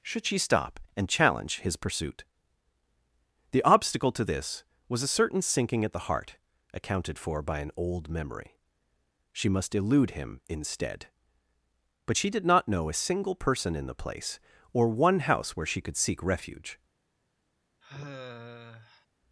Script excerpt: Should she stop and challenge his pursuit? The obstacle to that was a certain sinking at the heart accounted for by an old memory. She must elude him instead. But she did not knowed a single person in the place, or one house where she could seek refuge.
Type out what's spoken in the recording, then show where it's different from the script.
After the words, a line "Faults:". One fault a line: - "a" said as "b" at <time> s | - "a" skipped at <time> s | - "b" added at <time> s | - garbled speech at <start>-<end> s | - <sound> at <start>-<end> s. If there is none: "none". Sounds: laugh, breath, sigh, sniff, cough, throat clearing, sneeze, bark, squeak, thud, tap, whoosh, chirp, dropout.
Should she stop and challenge his pursuit? The obstacle to this was a certain sinking at the heart accounted for by an old memory. She must elude him instead. But she did not know a single person in the place, or one house where she could seek refuge.
Faults:
- "that" said as "this" at 4.2 s
- "knowed" said as "know" at 12.7 s
- sigh at 17.8-19.1 s